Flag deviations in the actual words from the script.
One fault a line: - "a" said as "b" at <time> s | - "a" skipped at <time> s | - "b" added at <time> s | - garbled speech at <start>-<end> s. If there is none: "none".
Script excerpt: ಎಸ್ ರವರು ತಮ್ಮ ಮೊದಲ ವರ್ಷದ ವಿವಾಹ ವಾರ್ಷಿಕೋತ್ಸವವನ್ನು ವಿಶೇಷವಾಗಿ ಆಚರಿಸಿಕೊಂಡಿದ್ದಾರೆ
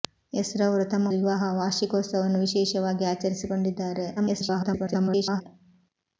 - "ಮೊದಲ ವರ್ಷದ" skipped at 1.1 s
- garbled speech at 4.2-5.4 s